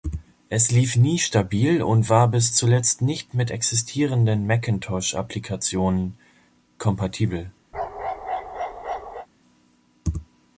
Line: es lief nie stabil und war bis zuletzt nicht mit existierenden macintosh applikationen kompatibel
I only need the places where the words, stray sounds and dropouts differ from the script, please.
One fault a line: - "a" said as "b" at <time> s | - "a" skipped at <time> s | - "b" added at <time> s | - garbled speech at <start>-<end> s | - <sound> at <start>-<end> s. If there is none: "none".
- bark at 7.7-9.3 s